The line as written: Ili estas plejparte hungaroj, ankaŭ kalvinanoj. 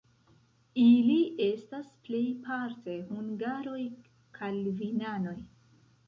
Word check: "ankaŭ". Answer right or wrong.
wrong